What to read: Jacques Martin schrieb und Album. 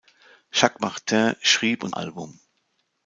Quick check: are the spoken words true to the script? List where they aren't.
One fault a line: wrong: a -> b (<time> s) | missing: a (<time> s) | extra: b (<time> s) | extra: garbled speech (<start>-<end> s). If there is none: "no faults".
no faults